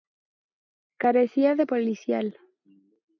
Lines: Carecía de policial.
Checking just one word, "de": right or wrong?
right